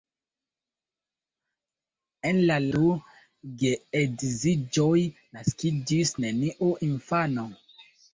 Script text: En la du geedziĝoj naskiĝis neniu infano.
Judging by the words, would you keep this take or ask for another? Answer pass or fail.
pass